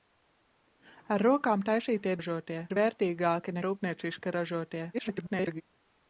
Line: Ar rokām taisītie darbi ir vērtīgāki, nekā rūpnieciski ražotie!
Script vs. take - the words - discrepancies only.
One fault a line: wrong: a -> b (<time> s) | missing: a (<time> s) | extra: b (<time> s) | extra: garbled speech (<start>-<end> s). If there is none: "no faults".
wrong: darbi -> ražotie (2.2 s)
missing: nekā (3.6 s)
extra: garbled speech (4.9-5.6 s)